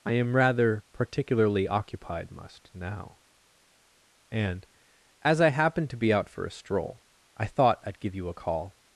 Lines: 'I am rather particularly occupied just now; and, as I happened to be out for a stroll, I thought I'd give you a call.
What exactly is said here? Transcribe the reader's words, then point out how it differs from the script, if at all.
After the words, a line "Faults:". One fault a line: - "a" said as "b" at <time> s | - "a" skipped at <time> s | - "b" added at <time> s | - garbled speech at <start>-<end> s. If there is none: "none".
'I am rather particularly occupied must now; and, as I happened to be out for a stroll, I thought I'd give you a call.
Faults:
- "just" said as "must" at 2.3 s